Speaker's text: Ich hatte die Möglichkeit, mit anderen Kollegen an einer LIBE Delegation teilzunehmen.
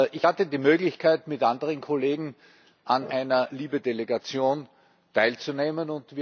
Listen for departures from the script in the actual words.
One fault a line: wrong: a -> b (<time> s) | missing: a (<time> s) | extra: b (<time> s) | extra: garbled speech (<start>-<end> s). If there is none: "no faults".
no faults